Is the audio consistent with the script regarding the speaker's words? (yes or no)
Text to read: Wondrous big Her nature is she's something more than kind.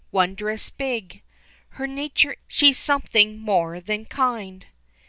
no